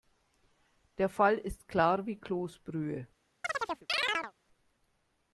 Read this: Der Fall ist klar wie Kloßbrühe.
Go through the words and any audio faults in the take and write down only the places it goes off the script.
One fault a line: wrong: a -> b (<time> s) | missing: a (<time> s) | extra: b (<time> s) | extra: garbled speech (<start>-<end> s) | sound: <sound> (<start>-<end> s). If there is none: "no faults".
sound: chirp (3.4-4.3 s)